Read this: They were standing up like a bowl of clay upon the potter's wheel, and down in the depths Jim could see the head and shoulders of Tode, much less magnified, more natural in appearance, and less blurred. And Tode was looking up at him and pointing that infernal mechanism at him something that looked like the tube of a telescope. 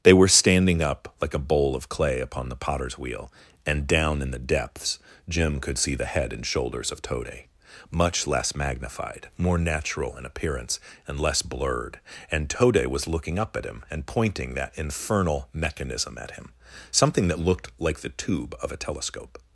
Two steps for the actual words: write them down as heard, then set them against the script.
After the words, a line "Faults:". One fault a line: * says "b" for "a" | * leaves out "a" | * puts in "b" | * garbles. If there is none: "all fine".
They were standing up like a bowl of clay upon the potter's wheel, and down in the depths Jim could see the head and shoulders of Tode, much less magnified, more natural in appearance, and less blurred. And Tode was looking up at him and pointing that infernal mechanism at him something that looked like the tube of a telescope.
Faults:
all fine